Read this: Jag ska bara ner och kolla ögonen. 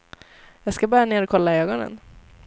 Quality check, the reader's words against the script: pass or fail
pass